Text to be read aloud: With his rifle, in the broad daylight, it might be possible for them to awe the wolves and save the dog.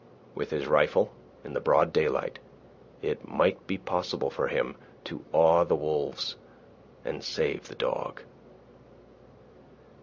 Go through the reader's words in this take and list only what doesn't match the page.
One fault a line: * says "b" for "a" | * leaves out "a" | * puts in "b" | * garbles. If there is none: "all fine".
* says "him" for "them"